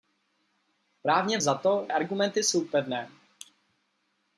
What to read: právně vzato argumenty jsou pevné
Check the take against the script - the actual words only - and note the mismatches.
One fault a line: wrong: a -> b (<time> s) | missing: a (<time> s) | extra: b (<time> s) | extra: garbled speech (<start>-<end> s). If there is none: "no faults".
no faults